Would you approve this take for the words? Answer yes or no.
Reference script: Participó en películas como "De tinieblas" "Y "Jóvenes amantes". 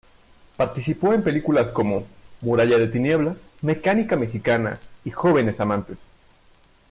no